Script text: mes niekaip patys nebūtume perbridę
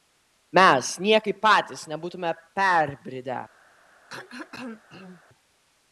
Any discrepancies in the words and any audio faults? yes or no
yes